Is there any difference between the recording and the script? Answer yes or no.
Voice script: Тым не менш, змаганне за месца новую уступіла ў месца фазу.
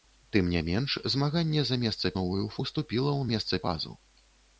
no